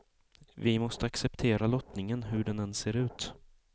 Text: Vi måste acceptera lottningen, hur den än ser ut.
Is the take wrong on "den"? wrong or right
right